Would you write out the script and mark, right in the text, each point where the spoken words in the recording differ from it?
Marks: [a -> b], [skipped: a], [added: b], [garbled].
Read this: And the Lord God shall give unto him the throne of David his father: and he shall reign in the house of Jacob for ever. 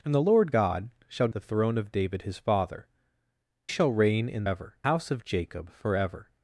And the Lord God shall [skipped: give unto him] the throne of David his father: [skipped: and he] shall reign in [the -> ever] house of Jacob for ever.